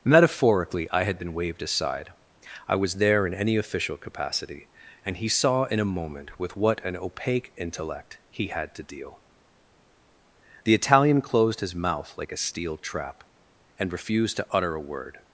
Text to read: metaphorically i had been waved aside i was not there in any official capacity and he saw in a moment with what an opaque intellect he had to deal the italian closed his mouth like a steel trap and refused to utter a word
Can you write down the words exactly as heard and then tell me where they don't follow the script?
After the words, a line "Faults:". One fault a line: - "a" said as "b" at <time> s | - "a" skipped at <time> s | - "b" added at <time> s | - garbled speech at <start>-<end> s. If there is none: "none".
metaphorically i had been waved aside i was there in any official capacity and he saw in a moment with what an opaque intellect he had to deal the italian closed his mouth like a steel trap and refused to utter a word
Faults:
- "not" skipped at 3.0 s